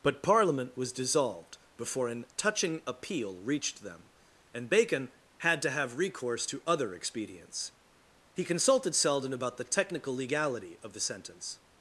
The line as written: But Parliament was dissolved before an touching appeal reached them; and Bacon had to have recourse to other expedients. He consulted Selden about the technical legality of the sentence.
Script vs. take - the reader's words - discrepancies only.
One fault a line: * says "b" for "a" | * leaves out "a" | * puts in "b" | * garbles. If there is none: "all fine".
all fine